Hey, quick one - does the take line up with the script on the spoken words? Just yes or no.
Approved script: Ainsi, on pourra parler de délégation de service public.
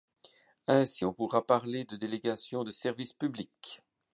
yes